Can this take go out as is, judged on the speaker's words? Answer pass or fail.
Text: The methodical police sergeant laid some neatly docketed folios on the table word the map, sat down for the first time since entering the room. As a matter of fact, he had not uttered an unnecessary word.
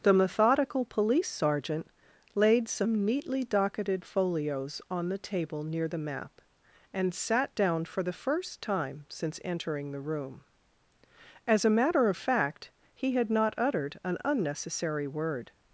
fail